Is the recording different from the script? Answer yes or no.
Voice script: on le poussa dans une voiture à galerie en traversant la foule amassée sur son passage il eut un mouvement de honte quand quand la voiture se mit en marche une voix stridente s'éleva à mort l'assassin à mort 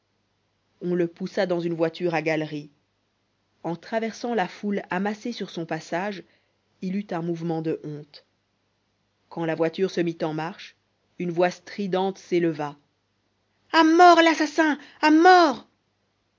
yes